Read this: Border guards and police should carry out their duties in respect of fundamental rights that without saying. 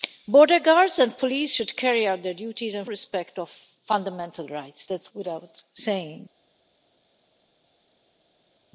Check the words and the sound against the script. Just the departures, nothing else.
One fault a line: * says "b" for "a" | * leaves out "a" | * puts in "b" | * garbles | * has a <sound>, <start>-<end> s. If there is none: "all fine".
all fine